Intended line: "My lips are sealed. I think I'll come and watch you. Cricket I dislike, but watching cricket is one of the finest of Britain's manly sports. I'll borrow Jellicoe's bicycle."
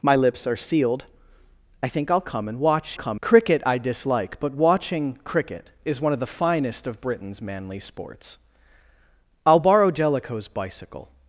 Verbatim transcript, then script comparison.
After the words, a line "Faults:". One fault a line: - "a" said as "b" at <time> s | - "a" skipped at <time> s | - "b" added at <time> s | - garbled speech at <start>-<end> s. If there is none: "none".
"My lips are sealed. I think I'll come and watch come. Cricket I dislike, but watching cricket is one of the finest of Britain's manly sports. I'll borrow Jellicoe's bicycle."
Faults:
- "you" said as "come" at 2.9 s